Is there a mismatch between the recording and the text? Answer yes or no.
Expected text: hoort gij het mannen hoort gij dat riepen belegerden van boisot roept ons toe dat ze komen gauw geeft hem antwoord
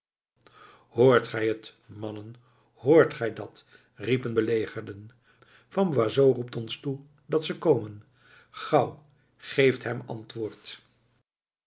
no